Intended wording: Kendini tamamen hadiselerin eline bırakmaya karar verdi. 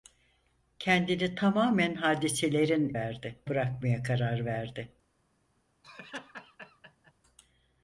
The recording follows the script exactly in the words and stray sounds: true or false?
false